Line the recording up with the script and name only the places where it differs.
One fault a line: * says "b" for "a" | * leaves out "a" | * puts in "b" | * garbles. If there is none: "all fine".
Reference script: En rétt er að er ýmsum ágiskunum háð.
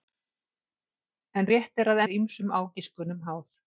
all fine